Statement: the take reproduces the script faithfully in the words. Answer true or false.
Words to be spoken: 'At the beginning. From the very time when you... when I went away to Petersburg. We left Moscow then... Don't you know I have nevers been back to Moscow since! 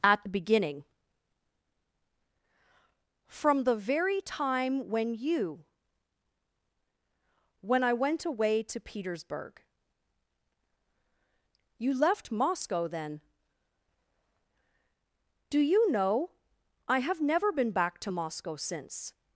false